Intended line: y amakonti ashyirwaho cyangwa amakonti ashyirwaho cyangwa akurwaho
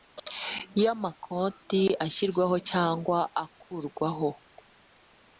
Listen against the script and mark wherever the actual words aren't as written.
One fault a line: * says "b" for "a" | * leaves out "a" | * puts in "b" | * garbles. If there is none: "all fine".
* leaves out "amakonti ashyirwaho cyangwa"